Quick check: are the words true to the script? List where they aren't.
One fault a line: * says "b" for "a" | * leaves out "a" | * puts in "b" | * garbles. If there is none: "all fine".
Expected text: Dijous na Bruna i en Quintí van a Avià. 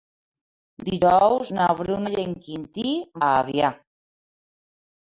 * leaves out "van"